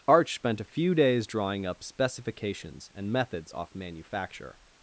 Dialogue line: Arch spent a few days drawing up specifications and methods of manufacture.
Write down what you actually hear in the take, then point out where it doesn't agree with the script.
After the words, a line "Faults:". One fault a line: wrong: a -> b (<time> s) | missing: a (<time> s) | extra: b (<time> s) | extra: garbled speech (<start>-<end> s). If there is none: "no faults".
Arch spent a few days drawing up specifications and methods off manufacture.
Faults:
wrong: of -> off (3.5 s)